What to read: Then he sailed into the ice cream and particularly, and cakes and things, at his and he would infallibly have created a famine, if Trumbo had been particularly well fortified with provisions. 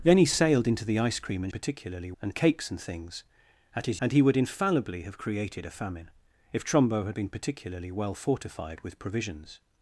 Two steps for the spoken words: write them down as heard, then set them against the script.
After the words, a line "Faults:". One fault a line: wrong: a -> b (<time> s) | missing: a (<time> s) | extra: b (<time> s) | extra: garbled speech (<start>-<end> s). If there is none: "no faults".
Then he sailed into the ice cream and particularly, and cakes and things, at his and he would infallibly have created a famine, if Trumbo had been particularly well fortified with provisions.
Faults:
no faults